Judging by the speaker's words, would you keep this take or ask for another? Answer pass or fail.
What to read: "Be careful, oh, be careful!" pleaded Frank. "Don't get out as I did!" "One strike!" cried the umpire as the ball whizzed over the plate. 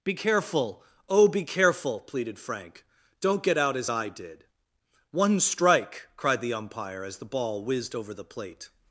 pass